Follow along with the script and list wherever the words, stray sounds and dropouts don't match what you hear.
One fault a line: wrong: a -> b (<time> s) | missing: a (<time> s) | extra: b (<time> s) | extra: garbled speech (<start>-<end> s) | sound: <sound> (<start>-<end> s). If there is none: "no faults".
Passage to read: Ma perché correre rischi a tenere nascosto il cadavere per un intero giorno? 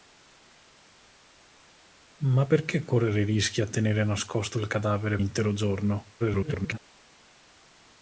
missing: per un (5.2 s)
extra: garbled speech (6.2-6.8 s)